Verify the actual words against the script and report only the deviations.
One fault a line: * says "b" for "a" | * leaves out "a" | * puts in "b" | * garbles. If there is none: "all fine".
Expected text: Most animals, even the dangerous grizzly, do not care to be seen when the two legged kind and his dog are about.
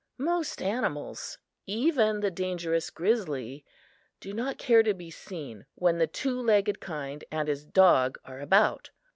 all fine